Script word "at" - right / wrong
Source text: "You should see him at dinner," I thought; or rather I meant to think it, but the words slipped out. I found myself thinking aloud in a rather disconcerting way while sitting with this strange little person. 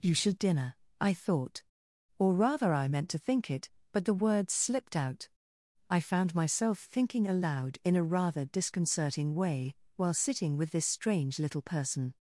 wrong